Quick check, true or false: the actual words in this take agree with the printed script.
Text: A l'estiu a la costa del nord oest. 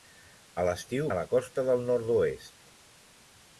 true